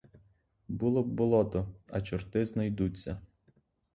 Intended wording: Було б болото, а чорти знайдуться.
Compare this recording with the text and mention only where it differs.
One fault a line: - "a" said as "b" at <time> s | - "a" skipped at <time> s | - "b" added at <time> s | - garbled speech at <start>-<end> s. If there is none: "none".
none